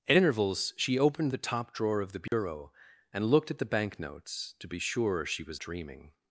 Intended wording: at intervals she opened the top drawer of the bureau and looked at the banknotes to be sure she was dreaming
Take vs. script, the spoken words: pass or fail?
pass